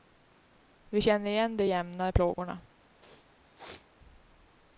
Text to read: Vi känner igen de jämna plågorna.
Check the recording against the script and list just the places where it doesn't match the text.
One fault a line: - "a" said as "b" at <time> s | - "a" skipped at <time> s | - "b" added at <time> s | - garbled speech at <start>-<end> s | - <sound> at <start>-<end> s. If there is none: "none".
- sneeze at 3.0-3.9 s